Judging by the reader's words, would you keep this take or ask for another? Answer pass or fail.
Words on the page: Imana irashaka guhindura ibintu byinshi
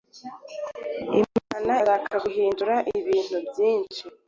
pass